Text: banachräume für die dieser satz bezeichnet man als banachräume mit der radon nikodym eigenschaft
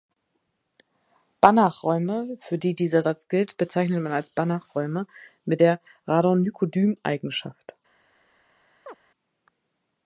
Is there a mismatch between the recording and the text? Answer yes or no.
yes